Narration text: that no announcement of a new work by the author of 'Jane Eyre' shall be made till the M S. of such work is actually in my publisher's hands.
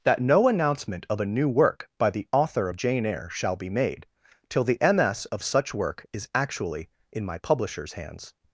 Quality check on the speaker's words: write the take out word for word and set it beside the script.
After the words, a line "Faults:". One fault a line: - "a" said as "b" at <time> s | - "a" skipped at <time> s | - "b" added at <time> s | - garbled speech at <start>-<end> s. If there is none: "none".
that no announcement of a new work by the author of 'Jane Eyre' shall be made till the M S. of such work is actually in my publisher's hands.
Faults:
none